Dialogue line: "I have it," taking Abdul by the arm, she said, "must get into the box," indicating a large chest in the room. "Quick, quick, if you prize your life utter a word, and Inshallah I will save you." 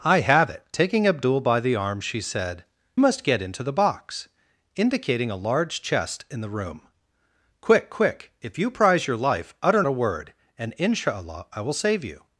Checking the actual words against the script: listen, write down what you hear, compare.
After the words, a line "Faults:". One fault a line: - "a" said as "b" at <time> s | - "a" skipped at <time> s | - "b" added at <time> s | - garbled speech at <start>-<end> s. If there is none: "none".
"I have it," taking Abdul by the arm, she said, "must get into the box," indicating a large chest in the room. "Quick, quick, if you prize your life utter a word, and Inshallah I will save you."
Faults:
none